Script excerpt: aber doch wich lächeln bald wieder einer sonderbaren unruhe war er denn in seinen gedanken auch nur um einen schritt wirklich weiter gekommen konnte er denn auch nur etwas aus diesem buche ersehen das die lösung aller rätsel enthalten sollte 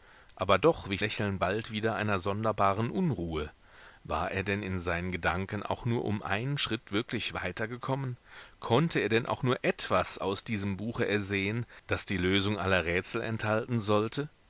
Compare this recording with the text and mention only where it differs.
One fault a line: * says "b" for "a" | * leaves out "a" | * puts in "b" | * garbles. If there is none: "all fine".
all fine